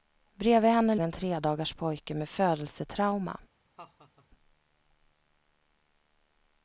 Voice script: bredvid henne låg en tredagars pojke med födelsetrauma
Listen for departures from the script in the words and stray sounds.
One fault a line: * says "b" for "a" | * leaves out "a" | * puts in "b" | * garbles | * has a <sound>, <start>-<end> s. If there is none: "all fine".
* leaves out "låg"
* has a laugh, 3.8-4.3 s